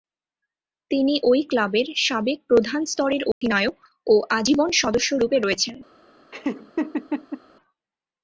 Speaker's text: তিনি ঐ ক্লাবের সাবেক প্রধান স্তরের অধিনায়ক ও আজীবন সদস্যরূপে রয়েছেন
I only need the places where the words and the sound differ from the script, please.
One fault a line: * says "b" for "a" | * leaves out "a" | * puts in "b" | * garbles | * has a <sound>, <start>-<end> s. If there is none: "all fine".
* has a dropout, 3.3-3.4 s
* has a laugh, 6.3-7.4 s